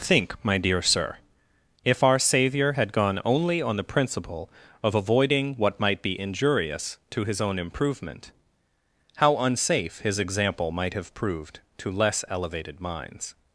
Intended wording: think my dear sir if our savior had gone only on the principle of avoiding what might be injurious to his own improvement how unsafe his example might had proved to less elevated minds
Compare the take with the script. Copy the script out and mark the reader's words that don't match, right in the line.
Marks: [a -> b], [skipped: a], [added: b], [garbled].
think my dear sir if our savior had gone only on the principle of avoiding what might be injurious to his own improvement how unsafe his example might [had -> have] proved to less elevated minds